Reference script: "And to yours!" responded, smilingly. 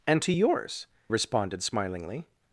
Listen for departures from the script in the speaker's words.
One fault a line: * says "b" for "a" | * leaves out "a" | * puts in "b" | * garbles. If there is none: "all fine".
all fine